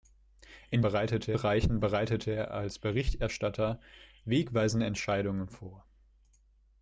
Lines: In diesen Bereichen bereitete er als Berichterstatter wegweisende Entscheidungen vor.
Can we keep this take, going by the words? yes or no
no